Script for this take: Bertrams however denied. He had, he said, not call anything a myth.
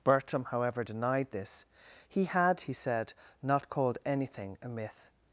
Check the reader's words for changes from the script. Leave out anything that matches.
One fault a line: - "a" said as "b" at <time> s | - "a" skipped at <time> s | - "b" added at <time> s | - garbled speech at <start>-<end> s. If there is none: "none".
- "Bertrams" said as "Bertram" at 0.0 s
- "this" added at 1.3 s
- "call" said as "called" at 3.7 s